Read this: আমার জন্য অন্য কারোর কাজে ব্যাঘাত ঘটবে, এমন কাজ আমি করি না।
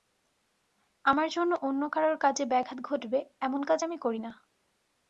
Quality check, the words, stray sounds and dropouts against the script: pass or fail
pass